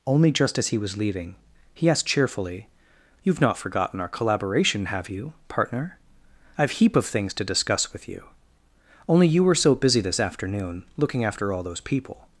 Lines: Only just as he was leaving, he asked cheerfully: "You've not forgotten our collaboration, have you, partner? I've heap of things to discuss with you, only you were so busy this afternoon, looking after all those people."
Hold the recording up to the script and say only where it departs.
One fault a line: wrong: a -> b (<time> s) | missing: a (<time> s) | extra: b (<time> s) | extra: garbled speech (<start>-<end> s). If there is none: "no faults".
no faults